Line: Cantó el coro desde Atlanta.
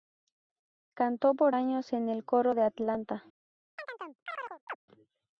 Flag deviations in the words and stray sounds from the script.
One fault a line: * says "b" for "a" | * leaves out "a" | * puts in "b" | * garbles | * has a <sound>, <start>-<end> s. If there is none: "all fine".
* puts in "por años en"
* says "de" for "desde"
* has a chirp, 3.8-4.8 s